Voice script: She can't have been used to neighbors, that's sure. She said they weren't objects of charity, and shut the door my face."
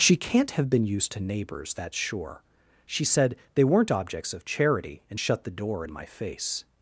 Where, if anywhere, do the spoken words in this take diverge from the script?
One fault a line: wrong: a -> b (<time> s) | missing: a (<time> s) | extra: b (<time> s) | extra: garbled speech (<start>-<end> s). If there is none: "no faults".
extra: in (5.8 s)